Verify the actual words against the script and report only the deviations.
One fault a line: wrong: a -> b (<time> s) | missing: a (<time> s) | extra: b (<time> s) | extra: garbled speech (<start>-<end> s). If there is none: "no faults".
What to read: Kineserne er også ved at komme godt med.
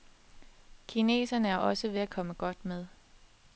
no faults